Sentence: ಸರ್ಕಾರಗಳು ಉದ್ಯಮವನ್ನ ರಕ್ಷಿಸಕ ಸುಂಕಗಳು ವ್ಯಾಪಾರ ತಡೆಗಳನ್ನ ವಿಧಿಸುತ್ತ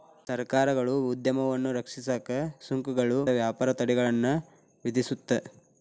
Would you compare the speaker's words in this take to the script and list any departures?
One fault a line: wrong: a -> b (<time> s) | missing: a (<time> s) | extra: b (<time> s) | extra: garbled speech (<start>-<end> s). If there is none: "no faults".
no faults